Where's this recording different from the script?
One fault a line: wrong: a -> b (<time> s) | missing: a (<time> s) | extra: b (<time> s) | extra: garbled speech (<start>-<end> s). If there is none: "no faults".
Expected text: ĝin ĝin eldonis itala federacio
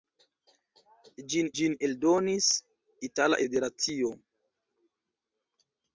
no faults